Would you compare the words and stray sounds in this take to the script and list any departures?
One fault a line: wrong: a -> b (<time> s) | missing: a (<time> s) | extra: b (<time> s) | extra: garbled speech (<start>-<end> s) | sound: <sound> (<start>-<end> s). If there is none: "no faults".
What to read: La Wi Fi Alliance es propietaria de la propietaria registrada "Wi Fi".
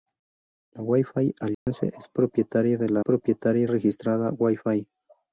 sound: dropout (1.5-1.7 s)